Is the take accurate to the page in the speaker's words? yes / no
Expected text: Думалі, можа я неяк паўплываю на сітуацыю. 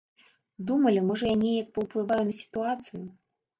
yes